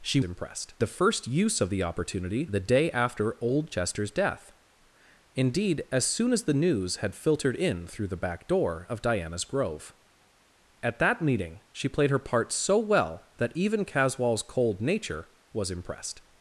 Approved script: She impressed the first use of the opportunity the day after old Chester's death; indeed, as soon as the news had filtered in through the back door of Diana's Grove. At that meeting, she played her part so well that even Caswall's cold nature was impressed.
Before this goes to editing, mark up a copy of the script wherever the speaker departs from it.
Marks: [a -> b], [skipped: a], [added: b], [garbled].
She impressed the first use of the opportunity the day after old Chester's death; indeed, as soon as the news had filtered in through the back door of Diana's Grove. At that meeting, she played her part so well that even Caswall's cold nature was impressed.